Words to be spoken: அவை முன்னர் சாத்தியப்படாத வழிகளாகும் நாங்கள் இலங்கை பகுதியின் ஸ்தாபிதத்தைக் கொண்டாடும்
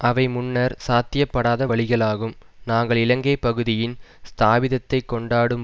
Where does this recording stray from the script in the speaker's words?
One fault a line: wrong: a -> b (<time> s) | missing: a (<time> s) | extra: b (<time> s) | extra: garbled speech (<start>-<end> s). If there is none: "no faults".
no faults